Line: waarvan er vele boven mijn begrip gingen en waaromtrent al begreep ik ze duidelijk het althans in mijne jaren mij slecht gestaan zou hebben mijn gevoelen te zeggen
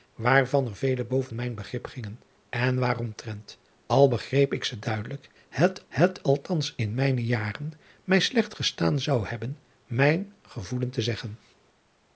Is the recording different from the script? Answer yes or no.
yes